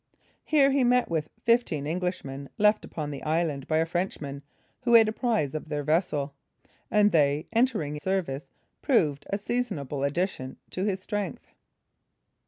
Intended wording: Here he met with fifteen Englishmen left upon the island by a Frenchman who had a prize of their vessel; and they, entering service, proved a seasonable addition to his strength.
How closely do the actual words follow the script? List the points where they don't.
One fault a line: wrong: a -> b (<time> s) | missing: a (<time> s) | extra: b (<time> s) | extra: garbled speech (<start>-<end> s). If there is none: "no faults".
no faults